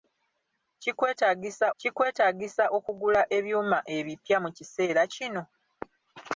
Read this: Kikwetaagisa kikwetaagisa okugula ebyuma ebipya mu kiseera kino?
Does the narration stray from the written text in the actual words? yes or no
no